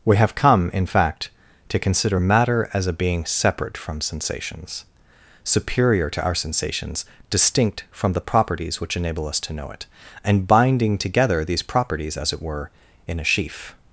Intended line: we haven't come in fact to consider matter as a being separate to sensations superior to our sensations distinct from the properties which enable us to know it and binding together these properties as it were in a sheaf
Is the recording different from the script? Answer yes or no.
yes